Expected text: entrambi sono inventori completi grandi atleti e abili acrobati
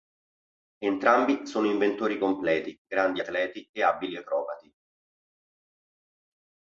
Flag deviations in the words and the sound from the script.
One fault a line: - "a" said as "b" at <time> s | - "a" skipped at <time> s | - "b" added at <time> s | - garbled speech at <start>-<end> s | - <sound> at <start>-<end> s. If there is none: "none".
none